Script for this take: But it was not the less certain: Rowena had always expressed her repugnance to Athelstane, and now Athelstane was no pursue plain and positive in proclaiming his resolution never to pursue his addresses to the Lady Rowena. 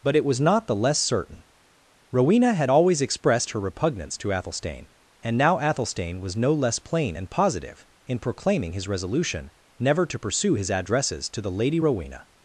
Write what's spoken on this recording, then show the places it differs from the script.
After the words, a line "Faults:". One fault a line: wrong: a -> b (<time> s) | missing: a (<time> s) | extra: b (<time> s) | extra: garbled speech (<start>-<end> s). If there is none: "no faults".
But it was not the less certain: Rowena had always expressed her repugnance to Athelstane, and now Athelstane was no less plain and positive in proclaiming his resolution never to pursue his addresses to the Lady Rowena.
Faults:
wrong: pursue -> less (6.5 s)